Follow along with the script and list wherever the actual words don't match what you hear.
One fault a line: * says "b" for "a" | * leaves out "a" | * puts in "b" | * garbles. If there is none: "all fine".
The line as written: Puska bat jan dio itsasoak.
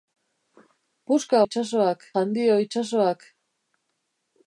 * says "itsasoak" for "bat"